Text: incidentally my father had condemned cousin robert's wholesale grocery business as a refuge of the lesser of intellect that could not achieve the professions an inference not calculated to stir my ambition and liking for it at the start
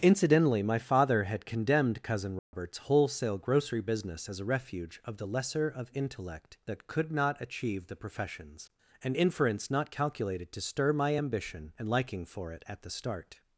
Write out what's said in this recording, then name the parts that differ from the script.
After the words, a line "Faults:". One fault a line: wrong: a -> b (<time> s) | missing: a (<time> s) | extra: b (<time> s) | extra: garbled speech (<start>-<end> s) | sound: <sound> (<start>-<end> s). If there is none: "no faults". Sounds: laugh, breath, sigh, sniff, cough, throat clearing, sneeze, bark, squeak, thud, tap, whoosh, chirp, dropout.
incidentally my father had condemned cousin robert's wholesale grocery business as a refuge of the lesser of intellect that could not achieve the professions an inference not calculated to stir my ambition and liking for it at the start
Faults:
sound: dropout (2.4-2.5 s)